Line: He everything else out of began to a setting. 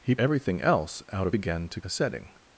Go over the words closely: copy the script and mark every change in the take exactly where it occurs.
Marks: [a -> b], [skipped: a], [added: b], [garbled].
He everything else out of began to a setting.